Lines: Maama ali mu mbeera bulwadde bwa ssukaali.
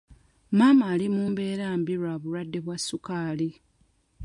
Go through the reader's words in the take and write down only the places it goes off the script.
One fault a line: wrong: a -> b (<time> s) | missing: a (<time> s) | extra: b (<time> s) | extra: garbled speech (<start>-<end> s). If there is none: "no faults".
extra: mbi lwa (1.8 s)